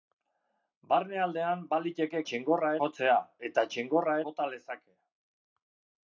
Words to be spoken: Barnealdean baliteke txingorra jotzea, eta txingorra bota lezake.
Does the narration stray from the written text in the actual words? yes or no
no